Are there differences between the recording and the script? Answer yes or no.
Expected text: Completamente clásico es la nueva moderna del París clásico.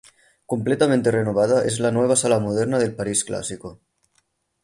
yes